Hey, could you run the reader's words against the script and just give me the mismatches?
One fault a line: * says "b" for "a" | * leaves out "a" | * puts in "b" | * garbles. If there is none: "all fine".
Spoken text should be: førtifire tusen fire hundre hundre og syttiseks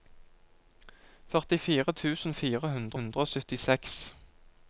all fine